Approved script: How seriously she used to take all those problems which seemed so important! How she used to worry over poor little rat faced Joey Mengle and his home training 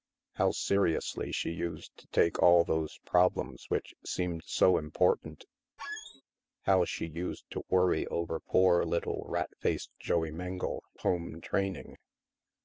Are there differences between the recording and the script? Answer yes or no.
yes